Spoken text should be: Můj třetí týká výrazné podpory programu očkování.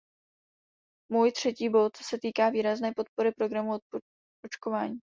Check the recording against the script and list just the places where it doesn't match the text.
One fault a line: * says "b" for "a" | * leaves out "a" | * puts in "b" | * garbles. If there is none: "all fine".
* puts in "bod se"